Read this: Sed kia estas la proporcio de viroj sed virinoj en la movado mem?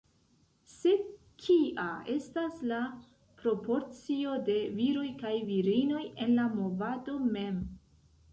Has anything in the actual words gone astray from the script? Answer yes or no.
yes